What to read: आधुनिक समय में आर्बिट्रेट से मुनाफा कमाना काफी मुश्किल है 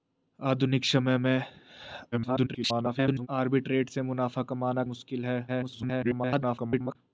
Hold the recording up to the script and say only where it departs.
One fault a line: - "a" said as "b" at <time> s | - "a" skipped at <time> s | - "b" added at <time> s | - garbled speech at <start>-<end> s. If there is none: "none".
- garbled speech at 2.1-3.3 s
- "काफी" skipped at 4.8 s
- garbled speech at 5.5-7.0 s